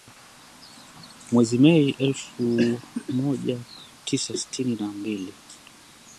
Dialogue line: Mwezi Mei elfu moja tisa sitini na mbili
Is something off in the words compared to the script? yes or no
no